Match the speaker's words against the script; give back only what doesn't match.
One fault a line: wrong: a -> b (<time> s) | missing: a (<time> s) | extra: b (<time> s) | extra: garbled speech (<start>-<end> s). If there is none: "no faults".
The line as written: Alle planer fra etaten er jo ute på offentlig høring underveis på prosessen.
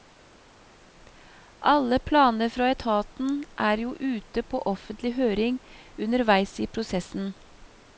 wrong: på -> i (6.6 s)